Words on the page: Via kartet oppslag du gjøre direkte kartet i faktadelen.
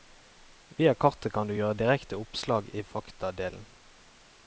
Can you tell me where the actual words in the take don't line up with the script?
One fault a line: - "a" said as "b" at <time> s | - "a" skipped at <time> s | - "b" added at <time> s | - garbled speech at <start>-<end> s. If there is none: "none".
- "oppslag" said as "kan" at 1.4 s
- "kartet" said as "oppslag" at 2.2 s